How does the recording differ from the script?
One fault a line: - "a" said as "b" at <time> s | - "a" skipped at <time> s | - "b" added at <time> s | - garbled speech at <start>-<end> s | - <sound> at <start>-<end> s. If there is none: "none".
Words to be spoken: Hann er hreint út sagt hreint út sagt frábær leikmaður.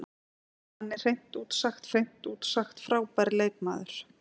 none